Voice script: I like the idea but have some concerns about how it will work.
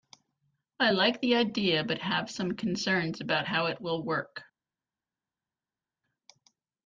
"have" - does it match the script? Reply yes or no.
yes